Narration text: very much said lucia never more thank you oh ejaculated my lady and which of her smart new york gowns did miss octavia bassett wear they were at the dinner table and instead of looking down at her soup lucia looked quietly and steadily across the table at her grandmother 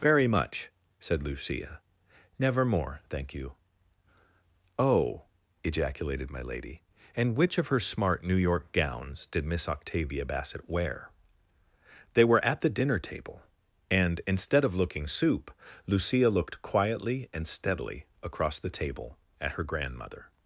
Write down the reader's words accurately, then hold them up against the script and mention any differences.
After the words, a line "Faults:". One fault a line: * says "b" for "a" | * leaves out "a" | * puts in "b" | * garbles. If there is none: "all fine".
very much said lucia never more thank you oh ejaculated my lady and which of her smart new york gowns did miss octavia bassett wear they were at the dinner table and instead of looking soup lucia looked quietly and steadily across the table at her grandmother
Faults:
* leaves out "down at her"